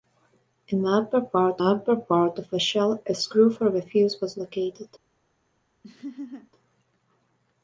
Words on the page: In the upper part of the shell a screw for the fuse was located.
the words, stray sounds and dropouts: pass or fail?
fail